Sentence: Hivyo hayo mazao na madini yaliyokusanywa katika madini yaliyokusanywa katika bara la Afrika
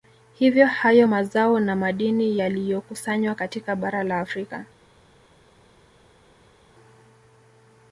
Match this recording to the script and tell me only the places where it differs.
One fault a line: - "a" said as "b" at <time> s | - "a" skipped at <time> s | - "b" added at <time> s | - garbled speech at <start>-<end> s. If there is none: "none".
- "madini yaliyokusanywa katika" skipped at 3.8 s